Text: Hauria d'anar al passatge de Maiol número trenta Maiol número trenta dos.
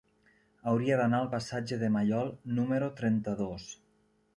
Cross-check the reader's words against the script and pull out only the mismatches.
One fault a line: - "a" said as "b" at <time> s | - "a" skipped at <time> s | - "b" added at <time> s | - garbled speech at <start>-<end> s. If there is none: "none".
- "Maiol número trenta" skipped at 3.4 s